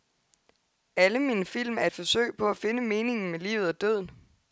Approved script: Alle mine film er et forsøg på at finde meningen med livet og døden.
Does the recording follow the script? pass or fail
pass